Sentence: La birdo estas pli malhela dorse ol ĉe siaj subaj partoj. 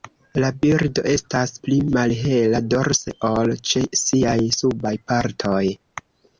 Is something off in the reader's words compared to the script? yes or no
no